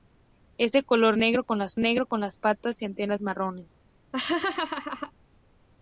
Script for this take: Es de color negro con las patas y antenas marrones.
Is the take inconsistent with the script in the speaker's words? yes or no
yes